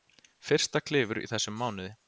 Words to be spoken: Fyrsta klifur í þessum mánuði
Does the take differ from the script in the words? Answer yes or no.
no